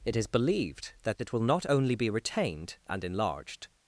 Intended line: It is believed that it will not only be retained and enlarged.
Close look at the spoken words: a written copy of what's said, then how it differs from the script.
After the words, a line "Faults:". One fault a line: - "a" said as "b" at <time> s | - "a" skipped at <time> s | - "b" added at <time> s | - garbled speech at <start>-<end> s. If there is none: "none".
It is believed that it will not only be retained and enlarged.
Faults:
none